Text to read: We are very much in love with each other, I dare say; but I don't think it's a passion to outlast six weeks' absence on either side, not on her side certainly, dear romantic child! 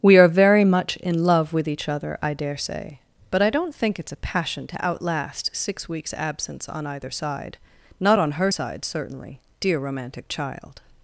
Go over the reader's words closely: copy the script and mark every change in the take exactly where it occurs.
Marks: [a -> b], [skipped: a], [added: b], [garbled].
We are very much in love with each other, I dare say; but I don't think it's a passion to outlast six weeks' absence on either side, not on her side certainly, dear romantic child!